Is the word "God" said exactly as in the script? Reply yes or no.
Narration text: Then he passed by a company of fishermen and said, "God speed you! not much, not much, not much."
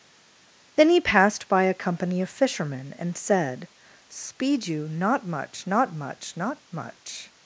no